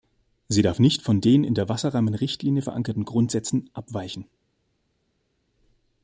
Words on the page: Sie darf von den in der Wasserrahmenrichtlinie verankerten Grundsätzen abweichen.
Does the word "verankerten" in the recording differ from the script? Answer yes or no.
no